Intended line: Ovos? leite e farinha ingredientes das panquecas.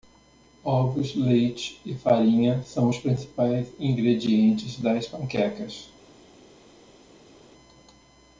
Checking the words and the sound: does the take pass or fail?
fail